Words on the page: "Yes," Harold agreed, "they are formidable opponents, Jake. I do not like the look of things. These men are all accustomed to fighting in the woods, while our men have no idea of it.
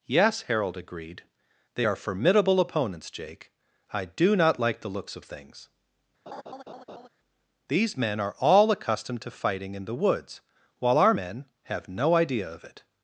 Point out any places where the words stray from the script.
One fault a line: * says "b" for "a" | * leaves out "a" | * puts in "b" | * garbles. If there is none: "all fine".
* says "looks" for "look"